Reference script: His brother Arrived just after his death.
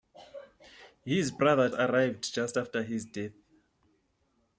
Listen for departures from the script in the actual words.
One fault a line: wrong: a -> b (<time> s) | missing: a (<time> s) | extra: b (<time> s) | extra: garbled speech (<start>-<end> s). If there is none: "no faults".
no faults